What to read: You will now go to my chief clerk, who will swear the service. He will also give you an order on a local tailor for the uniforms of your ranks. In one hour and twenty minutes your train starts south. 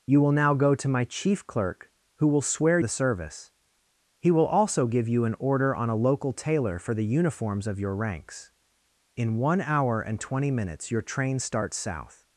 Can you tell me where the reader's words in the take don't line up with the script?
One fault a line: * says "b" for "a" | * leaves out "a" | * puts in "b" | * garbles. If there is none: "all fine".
all fine